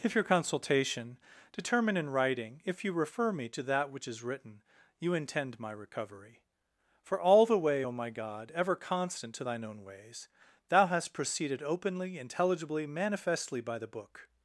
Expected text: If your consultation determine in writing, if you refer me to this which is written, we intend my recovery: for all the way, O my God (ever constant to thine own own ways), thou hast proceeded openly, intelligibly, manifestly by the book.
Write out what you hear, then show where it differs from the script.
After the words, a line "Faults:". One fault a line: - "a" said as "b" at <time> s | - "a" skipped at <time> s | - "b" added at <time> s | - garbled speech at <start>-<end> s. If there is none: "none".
If your consultation determine in writing, if you refer me to that which is written, you intend my recovery: for all the way, O my God (ever constant to thine own ways), thou hast proceeded openly, intelligibly, manifestly by the book.
Faults:
- "this" said as "that" at 3.6 s
- "we" said as "you" at 5.0 s
- "own" skipped at 9.8 s